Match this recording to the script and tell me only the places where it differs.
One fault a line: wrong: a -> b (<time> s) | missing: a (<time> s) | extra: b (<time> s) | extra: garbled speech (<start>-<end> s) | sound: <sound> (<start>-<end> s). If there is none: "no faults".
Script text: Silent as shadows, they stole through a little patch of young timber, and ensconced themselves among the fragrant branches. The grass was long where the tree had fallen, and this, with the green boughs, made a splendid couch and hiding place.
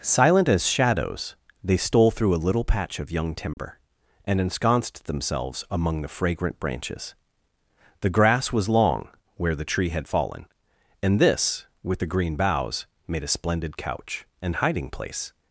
sound: dropout (3.5-3.6 s)